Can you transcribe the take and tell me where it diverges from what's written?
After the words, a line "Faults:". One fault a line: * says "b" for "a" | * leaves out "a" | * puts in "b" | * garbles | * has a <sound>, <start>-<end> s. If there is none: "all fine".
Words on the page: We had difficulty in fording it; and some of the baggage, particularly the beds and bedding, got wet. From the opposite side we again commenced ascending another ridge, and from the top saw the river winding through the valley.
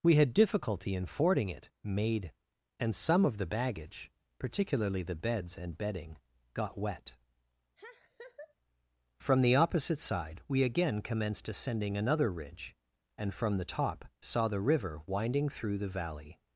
We had difficulty in fording it; made and some of the baggage, particularly the beds and bedding, got wet. From the opposite side we again commenced ascending another ridge, and from the top saw the river winding through the valley.
Faults:
* puts in "made"
* has a laugh, 7.8-8.5 s